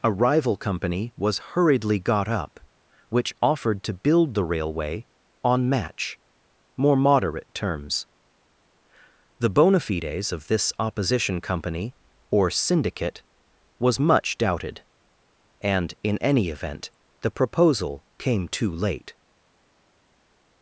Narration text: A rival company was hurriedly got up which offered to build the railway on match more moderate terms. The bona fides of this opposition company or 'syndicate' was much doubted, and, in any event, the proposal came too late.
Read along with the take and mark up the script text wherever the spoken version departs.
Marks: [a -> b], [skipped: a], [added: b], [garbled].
A rival company was hurriedly got up which offered to build the railway on match more moderate terms. The bona fides of this opposition company or 'syndicate' was much doubted, and, in any event, the proposal came too late.